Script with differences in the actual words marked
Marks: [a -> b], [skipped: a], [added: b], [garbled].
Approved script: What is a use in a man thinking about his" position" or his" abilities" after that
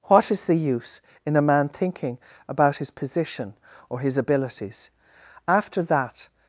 What is [a -> the] use in a man thinking about his" position" or his" abilities" after that